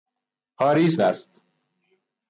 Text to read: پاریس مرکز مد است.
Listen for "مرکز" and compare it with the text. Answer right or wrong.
wrong